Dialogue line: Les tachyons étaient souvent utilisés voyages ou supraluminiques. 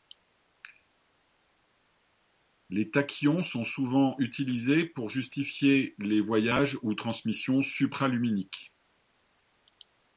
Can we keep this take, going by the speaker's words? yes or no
no